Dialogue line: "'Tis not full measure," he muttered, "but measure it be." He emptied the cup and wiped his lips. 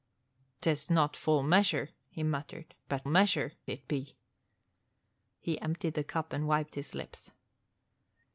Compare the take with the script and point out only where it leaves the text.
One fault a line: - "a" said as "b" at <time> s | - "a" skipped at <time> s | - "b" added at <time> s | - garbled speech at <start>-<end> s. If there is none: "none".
none